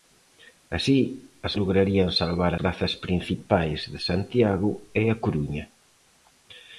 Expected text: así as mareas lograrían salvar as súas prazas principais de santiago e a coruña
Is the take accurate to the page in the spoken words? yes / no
no